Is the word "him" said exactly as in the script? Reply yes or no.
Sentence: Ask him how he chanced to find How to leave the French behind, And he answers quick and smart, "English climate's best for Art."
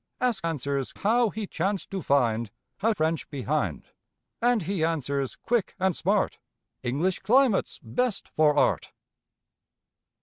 no